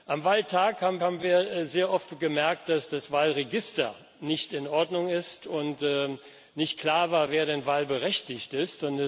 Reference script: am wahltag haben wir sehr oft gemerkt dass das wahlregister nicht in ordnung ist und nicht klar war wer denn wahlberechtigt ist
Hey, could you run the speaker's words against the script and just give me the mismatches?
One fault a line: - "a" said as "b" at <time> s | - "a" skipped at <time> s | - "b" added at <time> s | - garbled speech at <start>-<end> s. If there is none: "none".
- "haben" added at 1.0 s